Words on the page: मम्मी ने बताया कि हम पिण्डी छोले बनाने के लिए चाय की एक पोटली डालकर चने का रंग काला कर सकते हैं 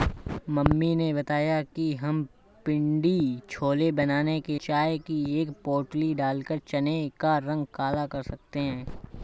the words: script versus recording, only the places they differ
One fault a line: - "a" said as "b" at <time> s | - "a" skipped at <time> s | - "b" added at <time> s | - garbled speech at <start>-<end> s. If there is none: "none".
- "लिए" skipped at 4.6 s